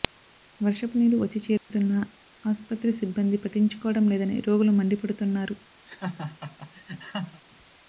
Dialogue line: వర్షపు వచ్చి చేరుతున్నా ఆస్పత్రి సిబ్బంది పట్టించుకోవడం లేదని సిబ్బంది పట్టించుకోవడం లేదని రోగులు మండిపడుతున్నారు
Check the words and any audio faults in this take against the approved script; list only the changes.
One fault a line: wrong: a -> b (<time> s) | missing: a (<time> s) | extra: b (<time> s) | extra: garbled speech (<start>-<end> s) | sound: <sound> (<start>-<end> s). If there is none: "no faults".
extra: నీరు (1.0 s)
sound: dropout (1.6-1.7 s)
missing: సిబ్బంది పట్టించుకోవడం లేదని (4.4 s)
sound: laugh (5.9-7.4 s)